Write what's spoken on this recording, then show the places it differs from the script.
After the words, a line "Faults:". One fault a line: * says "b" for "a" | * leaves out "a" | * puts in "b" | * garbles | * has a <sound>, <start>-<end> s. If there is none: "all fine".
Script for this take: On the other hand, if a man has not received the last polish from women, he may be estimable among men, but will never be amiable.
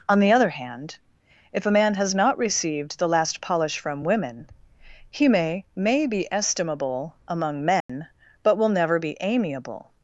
On the other hand, if a man has not received the last polish from women, he may may be estimable among men, but will never be amiable.
Faults:
* puts in "may"
* has a dropout, 7.8-7.9 s